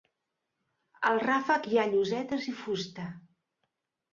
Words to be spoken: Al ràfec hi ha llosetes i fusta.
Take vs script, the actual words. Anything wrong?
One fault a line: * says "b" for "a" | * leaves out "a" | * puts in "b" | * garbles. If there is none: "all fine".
all fine